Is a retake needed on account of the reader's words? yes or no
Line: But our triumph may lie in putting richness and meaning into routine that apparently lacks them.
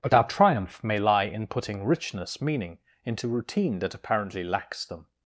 yes